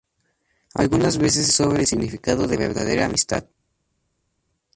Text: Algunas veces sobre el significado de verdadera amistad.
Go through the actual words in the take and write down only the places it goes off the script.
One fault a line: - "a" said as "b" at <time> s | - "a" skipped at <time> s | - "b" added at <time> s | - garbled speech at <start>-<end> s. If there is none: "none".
none